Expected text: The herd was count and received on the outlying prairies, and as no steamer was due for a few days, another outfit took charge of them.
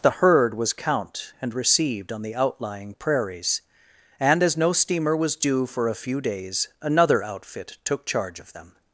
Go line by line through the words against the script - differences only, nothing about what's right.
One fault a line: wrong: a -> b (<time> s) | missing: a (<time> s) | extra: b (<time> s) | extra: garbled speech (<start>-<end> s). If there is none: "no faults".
no faults